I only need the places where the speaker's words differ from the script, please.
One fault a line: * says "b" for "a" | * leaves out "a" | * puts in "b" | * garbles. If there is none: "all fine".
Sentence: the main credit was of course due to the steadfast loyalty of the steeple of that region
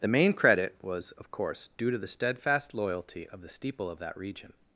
all fine